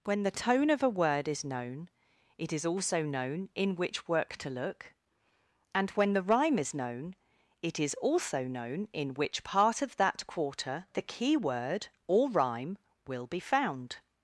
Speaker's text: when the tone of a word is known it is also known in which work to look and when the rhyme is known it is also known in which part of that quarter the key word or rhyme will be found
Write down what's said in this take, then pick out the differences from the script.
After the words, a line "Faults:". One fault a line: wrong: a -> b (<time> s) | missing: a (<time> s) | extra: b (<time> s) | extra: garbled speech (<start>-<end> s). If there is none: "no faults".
when the tone of a word is known it is also known in which work to look and when the rhyme is known it is also known in which part of that quarter the key word or rhyme will be found
Faults:
no faults